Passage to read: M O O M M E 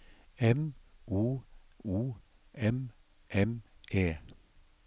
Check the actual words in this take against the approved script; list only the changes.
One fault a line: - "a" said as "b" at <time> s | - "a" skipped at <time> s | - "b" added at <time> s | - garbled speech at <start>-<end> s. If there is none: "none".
none